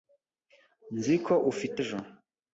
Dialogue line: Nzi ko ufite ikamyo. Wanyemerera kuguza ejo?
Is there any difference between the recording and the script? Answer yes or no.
yes